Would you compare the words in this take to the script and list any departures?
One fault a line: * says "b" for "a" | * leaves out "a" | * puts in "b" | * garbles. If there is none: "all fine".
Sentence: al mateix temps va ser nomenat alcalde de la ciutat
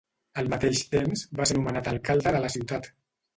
all fine